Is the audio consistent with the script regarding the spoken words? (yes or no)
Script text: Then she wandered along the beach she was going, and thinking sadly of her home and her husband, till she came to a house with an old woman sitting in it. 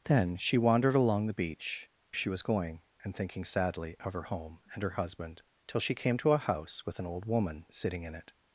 yes